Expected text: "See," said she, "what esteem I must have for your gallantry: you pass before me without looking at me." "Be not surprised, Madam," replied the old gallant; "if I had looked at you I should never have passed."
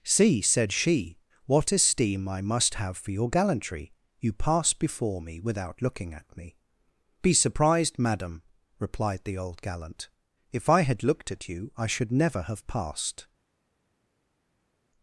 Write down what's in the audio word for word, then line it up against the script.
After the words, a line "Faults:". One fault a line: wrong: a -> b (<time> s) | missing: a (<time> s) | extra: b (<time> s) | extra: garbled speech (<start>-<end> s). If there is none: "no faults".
"See," said she, "what esteem I must have for your gallantry: you pass before me without looking at me." "Be surprised, Madam," replied the old gallant; "if I had looked at you I should never have passed."
Faults:
missing: not (7.3 s)